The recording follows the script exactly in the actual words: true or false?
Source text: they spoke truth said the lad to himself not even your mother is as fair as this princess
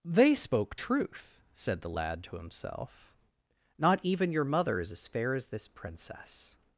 true